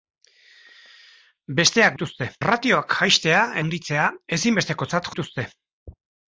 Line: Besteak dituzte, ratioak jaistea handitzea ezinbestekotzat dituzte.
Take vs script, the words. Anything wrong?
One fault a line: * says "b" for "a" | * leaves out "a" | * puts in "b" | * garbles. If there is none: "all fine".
all fine